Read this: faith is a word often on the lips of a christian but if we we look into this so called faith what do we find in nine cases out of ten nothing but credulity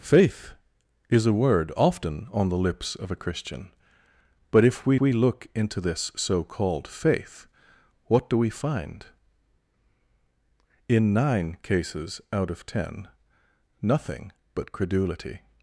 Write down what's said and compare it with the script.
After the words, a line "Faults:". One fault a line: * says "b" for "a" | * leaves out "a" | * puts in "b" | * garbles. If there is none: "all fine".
faith is a word often on the lips of a christian but if we we look into this so called faith what do we find in nine cases out of ten nothing but credulity
Faults:
all fine